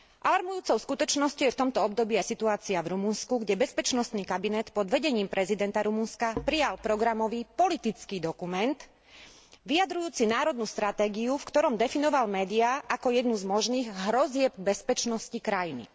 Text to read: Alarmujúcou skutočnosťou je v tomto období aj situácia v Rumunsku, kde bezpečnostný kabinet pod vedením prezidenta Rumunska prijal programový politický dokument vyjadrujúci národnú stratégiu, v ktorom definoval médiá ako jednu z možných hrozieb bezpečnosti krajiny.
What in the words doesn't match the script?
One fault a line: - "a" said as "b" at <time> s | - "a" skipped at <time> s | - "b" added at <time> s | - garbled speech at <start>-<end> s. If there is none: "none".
none